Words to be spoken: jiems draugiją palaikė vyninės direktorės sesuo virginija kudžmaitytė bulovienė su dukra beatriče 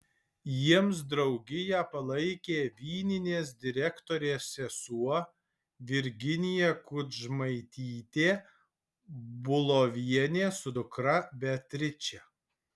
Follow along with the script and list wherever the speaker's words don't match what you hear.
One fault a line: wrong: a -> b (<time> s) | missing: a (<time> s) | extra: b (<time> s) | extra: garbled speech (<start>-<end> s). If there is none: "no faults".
no faults